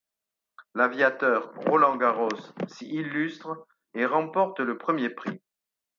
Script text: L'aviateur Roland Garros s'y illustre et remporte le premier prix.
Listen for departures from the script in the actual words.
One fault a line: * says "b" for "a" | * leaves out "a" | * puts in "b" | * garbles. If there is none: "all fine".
all fine